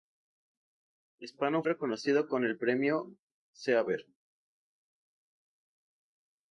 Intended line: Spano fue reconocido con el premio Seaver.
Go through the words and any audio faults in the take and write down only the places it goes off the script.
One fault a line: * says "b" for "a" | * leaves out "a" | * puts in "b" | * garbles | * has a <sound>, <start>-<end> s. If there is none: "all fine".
* leaves out "fue"